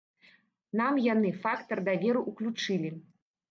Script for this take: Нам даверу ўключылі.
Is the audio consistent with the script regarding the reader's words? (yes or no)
no